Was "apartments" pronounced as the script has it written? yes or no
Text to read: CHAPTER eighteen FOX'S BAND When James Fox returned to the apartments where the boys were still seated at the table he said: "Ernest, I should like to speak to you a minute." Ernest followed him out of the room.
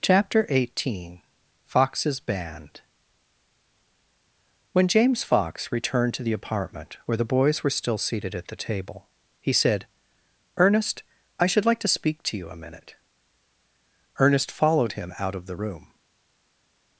no